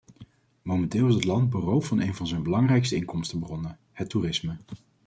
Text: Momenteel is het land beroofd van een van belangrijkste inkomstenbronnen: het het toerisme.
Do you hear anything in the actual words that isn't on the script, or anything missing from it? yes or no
yes